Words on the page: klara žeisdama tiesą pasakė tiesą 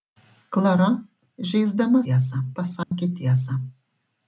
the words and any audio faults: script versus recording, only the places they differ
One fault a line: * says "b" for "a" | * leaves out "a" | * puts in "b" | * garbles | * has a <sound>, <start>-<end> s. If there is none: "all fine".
* has a dropout, 2.8-2.9 s